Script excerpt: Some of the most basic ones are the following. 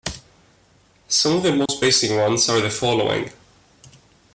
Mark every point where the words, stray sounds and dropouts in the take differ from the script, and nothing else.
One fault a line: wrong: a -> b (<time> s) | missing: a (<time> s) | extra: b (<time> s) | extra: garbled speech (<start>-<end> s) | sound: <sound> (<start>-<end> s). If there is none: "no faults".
sound: dropout (1.7-1.7 s)